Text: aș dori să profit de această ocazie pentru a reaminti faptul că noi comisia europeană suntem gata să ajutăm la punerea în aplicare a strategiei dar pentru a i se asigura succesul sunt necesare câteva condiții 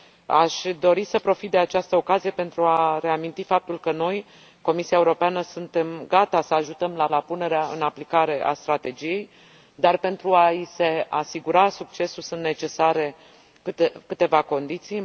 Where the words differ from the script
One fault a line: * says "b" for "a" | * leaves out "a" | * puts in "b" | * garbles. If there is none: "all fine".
* puts in "la"